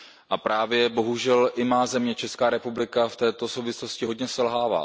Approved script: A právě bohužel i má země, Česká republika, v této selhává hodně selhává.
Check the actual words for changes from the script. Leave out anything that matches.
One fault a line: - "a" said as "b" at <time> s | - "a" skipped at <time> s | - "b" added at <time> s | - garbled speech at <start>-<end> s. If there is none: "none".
- "selhává" said as "souvislosti" at 3.5 s